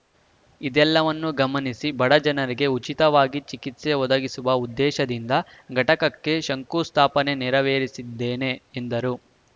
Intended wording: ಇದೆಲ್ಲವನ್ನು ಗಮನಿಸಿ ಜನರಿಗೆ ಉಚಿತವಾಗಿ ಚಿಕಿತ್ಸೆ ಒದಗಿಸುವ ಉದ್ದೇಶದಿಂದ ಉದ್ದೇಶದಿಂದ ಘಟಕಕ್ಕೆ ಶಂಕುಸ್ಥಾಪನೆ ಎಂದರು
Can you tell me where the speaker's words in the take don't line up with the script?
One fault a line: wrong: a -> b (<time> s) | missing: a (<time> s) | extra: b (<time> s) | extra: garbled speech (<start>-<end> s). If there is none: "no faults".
extra: ಬಡ (2.0 s)
missing: ಉದ್ದೇಶದಿಂದ (5.3 s)
extra: ನೆರವೇರಿಸಿದ್ದೇನೆ (7.4 s)